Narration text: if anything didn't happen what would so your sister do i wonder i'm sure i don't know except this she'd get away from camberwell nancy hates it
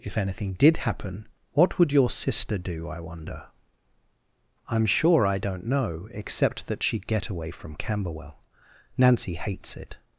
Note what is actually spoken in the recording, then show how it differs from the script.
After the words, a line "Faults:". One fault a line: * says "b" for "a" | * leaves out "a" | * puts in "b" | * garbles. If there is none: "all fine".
if anything did happen what would your sister do i wonder i'm sure i don't know except that she'd get away from camberwell nancy hates it
Faults:
* says "did" for "didn't"
* leaves out "so"
* says "that" for "this"